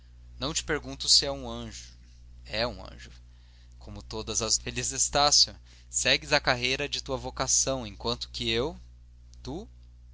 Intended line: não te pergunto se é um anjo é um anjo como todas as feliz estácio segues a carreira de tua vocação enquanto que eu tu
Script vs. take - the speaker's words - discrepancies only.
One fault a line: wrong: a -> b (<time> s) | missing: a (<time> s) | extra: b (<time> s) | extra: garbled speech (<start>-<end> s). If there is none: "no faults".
no faults